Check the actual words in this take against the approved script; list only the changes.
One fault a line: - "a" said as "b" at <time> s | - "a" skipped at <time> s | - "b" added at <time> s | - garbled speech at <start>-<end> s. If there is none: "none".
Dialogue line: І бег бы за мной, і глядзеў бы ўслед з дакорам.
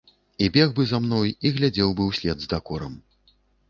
none